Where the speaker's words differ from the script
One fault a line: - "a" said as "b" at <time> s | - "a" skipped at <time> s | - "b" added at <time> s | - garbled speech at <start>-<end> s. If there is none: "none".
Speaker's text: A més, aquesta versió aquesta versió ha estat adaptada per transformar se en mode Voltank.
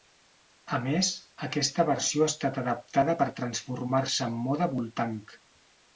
- "aquesta versió" skipped at 2.2 s